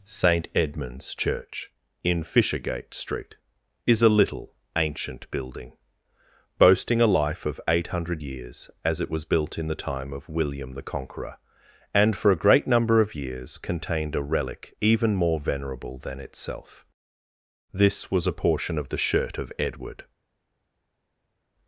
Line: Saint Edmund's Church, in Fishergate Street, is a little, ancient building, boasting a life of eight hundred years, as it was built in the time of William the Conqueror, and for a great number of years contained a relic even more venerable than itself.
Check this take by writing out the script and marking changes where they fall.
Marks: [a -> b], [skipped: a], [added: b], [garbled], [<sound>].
Saint Edmund's Church, in Fishergate Street, is a little, ancient building, boasting a life of eight hundred years, as it was built in the time of William the Conqueror, and for a great number of years contained a relic even more venerable than itself. [added: This was a portion of the shirt of Edward]